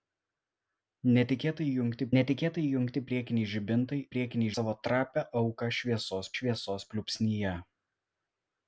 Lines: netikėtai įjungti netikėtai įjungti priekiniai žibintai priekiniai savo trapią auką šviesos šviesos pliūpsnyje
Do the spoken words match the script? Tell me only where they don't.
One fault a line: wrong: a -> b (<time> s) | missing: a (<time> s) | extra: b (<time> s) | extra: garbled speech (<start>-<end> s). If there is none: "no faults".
no faults